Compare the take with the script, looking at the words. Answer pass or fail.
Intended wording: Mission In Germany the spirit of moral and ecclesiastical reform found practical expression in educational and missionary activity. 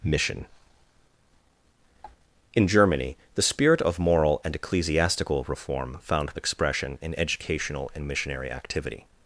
fail